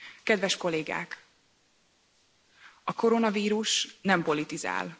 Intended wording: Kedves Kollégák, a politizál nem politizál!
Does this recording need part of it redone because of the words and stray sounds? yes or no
yes